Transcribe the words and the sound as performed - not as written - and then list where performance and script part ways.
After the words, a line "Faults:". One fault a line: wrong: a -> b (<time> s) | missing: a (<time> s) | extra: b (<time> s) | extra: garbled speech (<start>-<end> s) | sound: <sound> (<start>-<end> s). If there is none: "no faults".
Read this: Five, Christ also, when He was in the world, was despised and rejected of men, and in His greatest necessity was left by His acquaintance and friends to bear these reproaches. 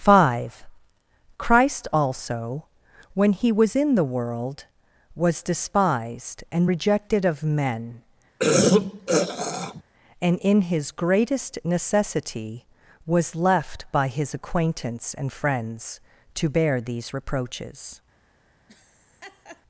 Five, Christ also, when He was in the world, was despised and rejected of men, and in His greatest necessity was left by His acquaintance and friends to bear these reproaches.
Faults:
sound: throat clearing (8.4-9.8 s)
sound: laugh (18.7-19.6 s)